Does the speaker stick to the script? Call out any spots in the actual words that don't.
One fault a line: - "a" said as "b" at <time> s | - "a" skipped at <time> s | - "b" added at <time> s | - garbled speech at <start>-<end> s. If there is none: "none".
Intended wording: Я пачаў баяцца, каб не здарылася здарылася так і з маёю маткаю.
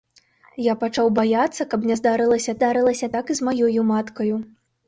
none